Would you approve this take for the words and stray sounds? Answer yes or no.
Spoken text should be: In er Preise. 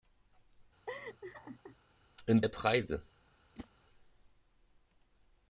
no